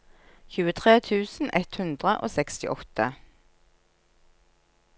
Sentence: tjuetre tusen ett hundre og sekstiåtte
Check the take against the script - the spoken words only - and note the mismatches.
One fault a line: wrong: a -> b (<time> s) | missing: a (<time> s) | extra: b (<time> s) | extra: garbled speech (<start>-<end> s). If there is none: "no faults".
no faults